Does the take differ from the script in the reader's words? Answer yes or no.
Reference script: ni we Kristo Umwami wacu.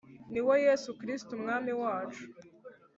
yes